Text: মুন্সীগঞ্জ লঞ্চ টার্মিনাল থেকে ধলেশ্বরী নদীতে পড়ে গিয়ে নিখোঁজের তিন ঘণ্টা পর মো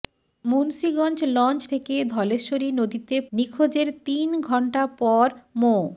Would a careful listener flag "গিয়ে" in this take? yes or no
yes